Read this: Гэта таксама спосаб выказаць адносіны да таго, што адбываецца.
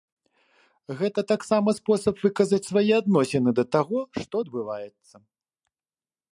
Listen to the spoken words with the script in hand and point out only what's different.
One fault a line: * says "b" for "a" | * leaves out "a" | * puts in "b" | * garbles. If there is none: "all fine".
* puts in "свае"